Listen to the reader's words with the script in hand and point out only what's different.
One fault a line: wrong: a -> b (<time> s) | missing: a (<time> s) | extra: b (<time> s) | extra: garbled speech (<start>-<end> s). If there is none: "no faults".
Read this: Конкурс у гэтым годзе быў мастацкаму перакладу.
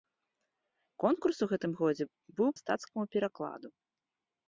no faults